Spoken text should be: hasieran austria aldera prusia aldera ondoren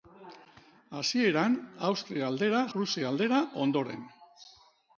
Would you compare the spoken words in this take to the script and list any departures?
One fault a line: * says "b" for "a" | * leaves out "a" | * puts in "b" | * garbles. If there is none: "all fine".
all fine